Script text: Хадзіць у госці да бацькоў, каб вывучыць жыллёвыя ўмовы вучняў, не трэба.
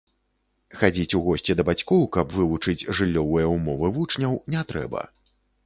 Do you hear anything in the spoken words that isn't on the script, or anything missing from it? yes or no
no